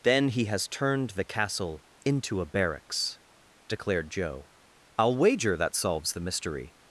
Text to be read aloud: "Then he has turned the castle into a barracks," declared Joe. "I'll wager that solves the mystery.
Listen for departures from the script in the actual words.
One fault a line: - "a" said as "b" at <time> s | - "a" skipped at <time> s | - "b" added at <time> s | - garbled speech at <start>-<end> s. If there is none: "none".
none